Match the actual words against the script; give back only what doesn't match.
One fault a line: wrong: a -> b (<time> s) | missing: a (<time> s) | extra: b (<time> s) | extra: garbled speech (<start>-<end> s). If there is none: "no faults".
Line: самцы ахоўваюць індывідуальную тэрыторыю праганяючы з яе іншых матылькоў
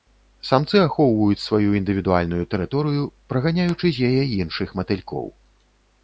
extra: сваю (1.5 s)